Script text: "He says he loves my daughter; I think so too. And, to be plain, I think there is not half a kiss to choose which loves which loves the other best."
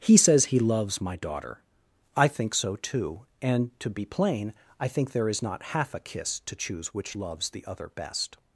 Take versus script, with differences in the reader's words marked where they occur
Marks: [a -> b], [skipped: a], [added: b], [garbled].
"He says he loves my daughter; I think so too. And, to be plain, I think there is not half a kiss to choose which loves [skipped: which loves] the other best."